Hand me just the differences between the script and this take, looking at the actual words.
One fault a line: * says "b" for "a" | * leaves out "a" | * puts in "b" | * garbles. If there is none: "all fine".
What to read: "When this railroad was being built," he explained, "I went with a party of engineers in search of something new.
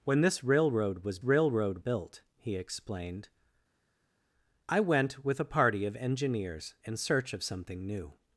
* says "railroad" for "being"